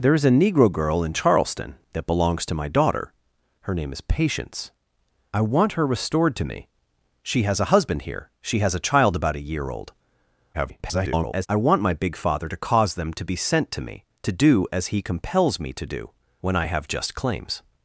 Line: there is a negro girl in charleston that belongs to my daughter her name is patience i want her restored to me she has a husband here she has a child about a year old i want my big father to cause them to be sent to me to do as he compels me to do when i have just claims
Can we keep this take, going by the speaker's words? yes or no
no